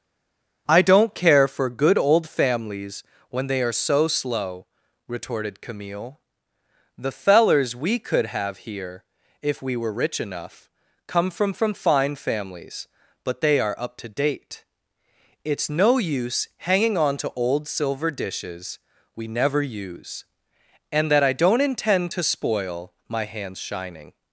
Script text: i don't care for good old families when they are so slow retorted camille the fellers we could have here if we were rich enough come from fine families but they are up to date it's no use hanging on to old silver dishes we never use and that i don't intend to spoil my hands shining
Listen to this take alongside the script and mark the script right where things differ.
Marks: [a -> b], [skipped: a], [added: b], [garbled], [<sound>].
i don't care for good old families when they are so slow retorted camille the fellers we could have here if we were rich enough come from [added: from] fine families but they are up to date it's no use hanging on to old silver dishes we never use and that i don't intend to spoil my hands shining